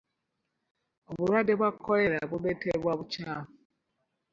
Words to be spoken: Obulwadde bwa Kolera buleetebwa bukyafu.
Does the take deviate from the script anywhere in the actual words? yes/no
no